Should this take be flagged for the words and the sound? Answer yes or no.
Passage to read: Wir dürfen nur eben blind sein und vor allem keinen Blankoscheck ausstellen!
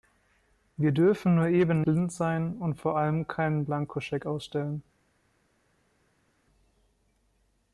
no